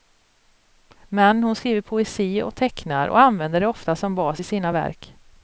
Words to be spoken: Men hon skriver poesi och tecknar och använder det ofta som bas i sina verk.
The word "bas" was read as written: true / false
true